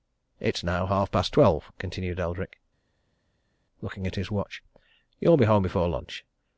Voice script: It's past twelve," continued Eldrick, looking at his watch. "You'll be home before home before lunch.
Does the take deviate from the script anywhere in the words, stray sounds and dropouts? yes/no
yes